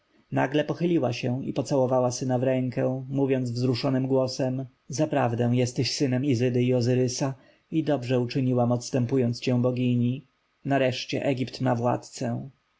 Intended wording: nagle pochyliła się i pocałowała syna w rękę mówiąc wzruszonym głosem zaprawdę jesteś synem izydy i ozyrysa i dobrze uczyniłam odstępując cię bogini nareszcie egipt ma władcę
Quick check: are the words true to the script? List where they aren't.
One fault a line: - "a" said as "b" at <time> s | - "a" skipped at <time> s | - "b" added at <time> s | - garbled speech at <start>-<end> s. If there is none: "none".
none